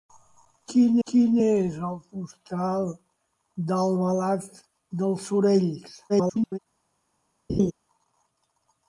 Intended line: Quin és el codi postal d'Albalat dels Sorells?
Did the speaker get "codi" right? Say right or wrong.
wrong